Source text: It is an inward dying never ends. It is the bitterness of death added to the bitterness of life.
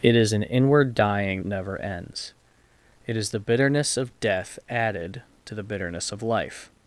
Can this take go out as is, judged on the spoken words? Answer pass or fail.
pass